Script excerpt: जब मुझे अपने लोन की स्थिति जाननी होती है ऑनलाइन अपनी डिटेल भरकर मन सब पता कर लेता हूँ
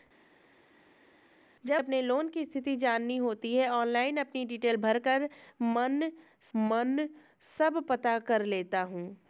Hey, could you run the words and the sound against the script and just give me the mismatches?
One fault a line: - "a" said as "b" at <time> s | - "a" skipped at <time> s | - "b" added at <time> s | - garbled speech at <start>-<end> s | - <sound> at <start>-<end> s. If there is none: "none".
- "मुझे" skipped at 1.8 s
- "मन" added at 6.6 s